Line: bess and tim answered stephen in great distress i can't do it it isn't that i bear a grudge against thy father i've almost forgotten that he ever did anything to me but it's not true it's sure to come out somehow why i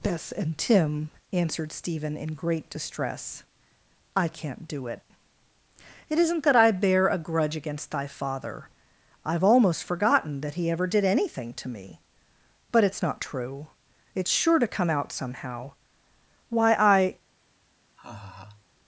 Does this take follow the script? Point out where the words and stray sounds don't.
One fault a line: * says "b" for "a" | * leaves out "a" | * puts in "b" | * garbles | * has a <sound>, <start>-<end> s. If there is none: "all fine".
* has a laugh, 18.0-18.7 s